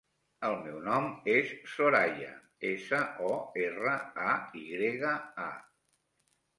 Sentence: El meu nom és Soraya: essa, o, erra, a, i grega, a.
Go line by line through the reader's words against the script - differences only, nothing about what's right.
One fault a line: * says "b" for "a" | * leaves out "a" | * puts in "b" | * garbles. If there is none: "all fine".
all fine